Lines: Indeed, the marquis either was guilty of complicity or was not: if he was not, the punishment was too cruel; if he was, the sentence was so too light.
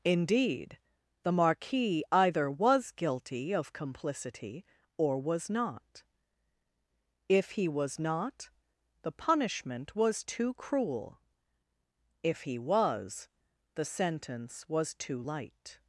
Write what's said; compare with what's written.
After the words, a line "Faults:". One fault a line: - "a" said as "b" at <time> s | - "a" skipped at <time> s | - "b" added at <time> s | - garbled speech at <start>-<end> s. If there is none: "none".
Indeed, the marquis either was guilty of complicity or was not: if he was not, the punishment was too cruel; if he was, the sentence was too light.
Faults:
- "so" skipped at 14.9 s